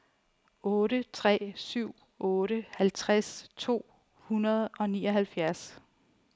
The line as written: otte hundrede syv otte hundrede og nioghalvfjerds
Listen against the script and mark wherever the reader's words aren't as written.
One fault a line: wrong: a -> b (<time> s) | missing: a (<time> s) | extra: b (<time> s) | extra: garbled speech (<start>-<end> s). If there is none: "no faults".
wrong: hundrede -> tre (1.1 s)
extra: halvtreds to (2.8 s)